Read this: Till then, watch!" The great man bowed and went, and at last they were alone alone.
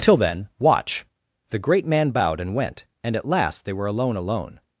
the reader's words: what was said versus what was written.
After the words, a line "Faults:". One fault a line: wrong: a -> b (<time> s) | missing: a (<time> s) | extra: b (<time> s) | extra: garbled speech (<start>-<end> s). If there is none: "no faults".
Till then, watch!" The great man bowed and went, and at last they were alone alone.
Faults:
no faults